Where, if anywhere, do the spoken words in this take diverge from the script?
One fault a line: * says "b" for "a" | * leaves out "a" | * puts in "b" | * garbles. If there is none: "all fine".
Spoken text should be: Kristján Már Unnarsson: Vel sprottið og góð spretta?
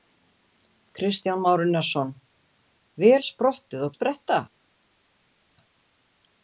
* leaves out "góð"